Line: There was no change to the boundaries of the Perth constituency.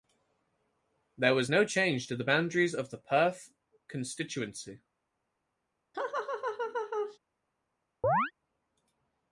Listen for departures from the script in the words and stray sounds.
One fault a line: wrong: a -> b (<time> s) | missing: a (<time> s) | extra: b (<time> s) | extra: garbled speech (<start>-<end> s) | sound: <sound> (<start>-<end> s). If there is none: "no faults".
sound: laugh (5.9-7.2 s)
sound: chirp (8.0-8.3 s)